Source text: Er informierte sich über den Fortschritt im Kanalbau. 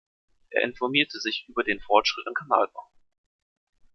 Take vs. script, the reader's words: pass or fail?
pass